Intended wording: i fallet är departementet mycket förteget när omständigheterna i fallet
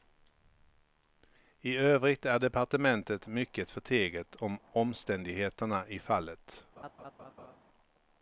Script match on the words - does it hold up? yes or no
no